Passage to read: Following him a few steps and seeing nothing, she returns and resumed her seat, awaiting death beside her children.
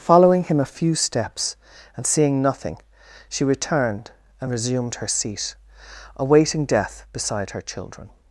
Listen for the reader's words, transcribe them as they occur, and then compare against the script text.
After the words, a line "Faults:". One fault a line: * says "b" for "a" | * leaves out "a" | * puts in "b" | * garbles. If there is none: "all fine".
Following him a few steps and seeing nothing, she returned and resumed her seat, awaiting death beside her children.
Faults:
* says "returned" for "returns"